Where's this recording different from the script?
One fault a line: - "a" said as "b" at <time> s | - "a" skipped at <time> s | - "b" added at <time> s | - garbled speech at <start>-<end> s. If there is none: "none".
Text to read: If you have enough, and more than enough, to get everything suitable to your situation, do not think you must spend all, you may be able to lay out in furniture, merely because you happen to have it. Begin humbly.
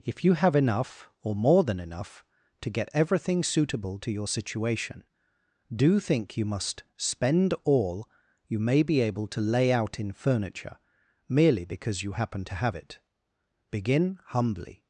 - "and" said as "or" at 1.2 s
- "not" skipped at 6.0 s